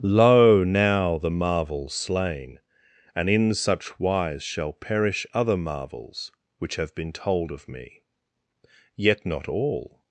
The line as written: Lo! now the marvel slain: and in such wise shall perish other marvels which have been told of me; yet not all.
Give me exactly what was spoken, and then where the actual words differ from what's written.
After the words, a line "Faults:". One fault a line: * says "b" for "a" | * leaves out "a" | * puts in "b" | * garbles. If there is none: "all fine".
Lo! now the marvel slain: and in such wise shall perish other marvels which have been told of me; yet not all.
Faults:
all fine